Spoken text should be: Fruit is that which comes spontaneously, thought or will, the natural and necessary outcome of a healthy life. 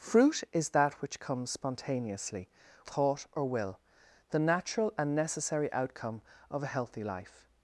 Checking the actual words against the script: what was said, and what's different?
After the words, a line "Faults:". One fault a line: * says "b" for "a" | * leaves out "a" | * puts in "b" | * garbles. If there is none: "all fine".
Fruit is that which comes spontaneously, thought or will, the natural and necessary outcome of a healthy life.
Faults:
all fine